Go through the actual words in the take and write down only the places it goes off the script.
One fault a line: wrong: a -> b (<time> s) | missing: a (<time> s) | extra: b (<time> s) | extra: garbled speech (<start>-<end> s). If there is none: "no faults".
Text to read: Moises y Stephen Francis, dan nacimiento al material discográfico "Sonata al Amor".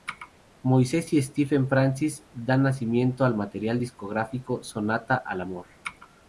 no faults